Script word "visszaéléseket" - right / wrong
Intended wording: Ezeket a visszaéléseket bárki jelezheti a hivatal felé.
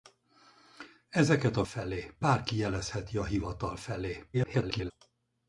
wrong